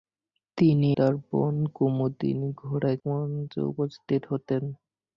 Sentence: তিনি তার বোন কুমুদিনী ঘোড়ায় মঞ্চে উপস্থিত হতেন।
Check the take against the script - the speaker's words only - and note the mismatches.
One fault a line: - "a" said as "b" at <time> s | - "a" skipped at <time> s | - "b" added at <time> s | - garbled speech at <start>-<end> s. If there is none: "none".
none